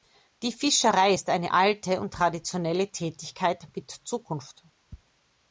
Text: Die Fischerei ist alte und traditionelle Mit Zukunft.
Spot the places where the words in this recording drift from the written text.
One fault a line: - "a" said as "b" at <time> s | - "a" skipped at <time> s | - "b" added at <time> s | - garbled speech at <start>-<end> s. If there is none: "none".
- "eine" added at 1.3 s
- "Tätigkeit" added at 2.9 s